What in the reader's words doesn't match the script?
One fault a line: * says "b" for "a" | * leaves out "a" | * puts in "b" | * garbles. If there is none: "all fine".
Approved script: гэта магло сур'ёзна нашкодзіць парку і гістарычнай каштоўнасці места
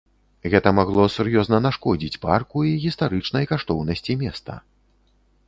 all fine